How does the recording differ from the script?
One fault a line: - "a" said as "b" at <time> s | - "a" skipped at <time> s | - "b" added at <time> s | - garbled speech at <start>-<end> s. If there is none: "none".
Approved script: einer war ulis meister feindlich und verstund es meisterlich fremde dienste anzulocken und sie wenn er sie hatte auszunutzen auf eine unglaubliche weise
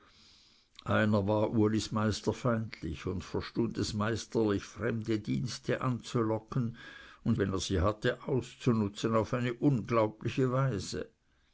- "sie" skipped at 7.4 s